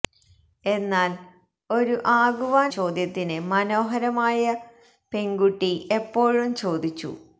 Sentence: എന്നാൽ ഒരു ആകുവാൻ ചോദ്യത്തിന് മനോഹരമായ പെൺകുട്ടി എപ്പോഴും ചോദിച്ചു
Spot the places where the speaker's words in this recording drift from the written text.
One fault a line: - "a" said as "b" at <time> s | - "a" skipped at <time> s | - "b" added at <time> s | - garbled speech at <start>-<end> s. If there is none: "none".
none